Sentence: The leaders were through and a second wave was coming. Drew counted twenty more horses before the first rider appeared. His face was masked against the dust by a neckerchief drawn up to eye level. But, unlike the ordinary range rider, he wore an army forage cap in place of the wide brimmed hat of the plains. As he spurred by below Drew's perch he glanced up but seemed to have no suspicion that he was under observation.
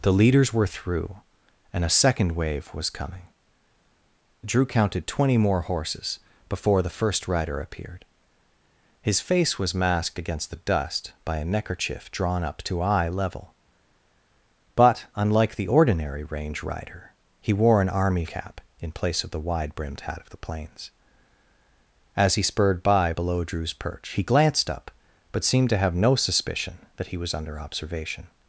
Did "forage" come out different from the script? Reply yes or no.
yes